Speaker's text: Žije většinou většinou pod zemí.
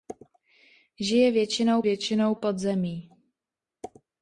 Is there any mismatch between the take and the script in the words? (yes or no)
no